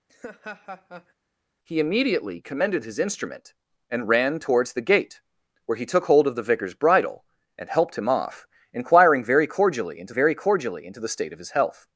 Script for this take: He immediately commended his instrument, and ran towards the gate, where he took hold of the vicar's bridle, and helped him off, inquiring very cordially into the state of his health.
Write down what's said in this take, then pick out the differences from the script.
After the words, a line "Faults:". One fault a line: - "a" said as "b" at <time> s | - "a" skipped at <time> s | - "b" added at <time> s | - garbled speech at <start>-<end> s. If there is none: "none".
He immediately commended his instrument, and ran towards the gate, where he took hold of the vicar's bridle, and helped him off, inquiring very cordially into very cordially into the state of his health.
Faults:
- "very cordially into" added at 10.1 s